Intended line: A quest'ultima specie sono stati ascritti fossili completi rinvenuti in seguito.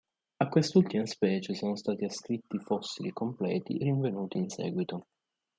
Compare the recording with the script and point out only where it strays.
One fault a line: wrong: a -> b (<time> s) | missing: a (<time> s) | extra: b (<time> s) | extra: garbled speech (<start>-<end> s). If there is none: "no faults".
no faults